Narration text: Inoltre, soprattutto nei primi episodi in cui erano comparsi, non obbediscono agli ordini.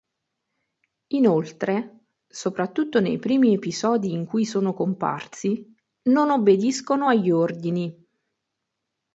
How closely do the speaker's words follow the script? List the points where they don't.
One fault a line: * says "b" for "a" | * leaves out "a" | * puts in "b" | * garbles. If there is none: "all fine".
* says "sono" for "erano"